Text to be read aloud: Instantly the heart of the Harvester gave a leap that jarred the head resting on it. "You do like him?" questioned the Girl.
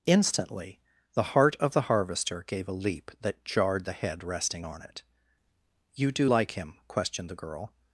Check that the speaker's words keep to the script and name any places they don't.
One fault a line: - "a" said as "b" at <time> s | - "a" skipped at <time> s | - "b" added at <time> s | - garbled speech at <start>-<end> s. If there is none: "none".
none